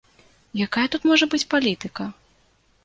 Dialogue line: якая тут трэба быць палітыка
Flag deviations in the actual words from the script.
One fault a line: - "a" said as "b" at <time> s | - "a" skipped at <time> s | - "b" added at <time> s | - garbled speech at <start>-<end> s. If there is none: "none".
- "трэба" said as "можа" at 1.1 s